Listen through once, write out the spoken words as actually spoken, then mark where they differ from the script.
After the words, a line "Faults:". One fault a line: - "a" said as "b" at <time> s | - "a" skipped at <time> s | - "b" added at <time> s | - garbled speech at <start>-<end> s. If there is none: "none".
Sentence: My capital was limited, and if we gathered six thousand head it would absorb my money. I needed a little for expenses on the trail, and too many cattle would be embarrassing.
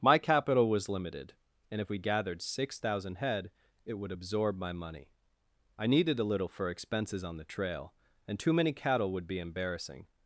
My capital was limited, and if we gathered six thousand head it would absorb my money. I needed a little for expenses on the trail, and too many cattle would be embarrassing.
Faults:
none